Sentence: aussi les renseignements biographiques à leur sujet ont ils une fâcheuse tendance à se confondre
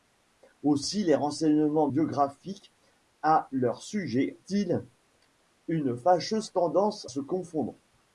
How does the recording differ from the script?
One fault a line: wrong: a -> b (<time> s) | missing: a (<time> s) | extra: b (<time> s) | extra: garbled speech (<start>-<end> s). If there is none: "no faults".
missing: ont (4.4 s)
missing: à (7.1 s)